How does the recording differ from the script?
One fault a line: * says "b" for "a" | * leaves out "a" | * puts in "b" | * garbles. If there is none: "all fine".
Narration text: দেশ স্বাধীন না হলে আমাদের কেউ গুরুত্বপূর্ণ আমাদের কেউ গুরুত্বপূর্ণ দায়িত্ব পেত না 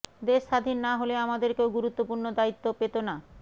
* leaves out "আমাদের কেউ গুরুত্বপূর্ণ"